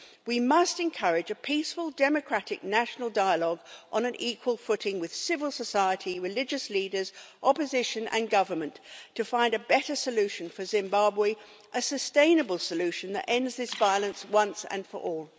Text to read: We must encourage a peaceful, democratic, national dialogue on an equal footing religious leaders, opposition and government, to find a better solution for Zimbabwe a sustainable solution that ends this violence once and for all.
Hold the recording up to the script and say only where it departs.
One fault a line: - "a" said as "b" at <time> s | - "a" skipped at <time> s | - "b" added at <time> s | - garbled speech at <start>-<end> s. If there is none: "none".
- "with civil society" added at 5.0 s